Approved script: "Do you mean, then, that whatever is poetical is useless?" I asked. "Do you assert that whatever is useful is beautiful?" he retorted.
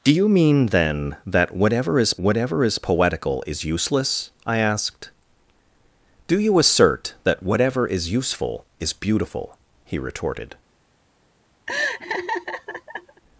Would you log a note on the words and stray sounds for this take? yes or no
yes